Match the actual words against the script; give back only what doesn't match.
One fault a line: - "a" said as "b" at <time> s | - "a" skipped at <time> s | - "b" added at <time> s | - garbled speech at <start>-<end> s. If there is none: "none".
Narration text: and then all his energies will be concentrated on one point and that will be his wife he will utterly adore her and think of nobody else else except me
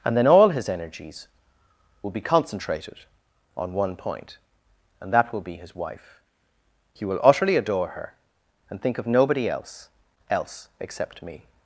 none